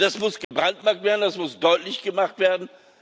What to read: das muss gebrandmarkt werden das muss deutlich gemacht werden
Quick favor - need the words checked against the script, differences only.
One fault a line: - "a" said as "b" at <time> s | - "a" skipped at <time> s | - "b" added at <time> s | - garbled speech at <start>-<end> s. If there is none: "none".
none